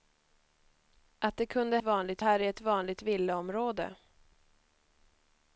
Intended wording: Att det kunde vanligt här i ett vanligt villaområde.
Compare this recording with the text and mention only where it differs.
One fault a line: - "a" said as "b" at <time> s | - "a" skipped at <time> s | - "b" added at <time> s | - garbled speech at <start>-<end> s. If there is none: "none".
none